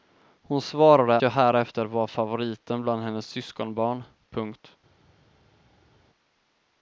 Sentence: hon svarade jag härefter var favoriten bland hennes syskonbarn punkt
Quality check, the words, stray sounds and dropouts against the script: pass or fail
pass